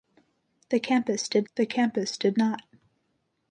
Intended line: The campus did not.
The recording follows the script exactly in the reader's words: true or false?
false